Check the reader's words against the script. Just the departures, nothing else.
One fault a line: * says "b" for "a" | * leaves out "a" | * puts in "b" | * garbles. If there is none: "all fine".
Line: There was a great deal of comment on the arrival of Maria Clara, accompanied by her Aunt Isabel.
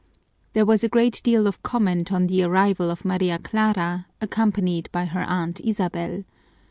all fine